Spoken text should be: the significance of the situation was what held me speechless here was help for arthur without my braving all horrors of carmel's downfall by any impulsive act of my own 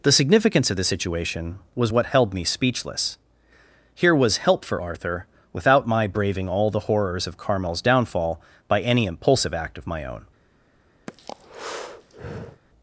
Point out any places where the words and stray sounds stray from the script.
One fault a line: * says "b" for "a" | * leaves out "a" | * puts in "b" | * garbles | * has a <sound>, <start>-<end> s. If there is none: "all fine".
* puts in "the"
* has a breath, 11.1-12.6 s